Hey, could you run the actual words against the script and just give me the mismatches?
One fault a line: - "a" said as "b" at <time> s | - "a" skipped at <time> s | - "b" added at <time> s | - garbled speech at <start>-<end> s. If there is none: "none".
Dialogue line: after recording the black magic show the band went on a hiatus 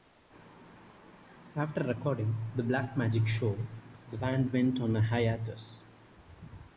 none